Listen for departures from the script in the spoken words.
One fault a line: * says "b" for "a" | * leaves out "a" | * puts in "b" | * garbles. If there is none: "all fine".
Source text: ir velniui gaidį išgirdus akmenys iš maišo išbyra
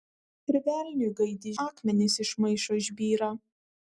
* leaves out "išgirdus"